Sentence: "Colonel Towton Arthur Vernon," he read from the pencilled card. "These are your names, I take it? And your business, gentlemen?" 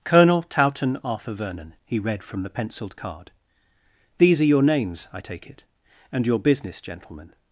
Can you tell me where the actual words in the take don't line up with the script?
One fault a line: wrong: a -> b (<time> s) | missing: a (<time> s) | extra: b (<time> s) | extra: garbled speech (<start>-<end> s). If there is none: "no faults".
no faults